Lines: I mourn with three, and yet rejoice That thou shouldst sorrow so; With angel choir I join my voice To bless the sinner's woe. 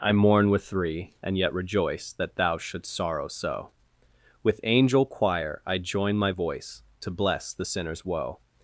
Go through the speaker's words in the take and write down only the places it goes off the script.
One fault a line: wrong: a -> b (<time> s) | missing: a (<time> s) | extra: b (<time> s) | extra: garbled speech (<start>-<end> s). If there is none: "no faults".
no faults